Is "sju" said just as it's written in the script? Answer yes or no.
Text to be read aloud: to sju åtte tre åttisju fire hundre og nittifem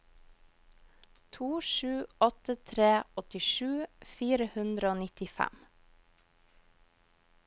yes